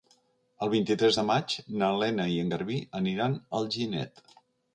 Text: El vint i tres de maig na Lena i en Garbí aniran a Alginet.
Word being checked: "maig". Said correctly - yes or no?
yes